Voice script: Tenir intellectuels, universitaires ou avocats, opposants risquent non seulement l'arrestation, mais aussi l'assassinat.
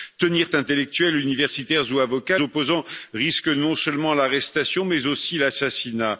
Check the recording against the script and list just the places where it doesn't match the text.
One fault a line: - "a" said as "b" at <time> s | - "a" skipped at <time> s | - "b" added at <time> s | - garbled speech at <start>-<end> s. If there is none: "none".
none